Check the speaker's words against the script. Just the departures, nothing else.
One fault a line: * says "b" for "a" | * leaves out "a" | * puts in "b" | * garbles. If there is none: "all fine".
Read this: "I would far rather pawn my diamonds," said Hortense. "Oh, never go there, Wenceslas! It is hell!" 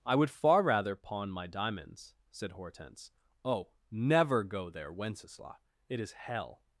all fine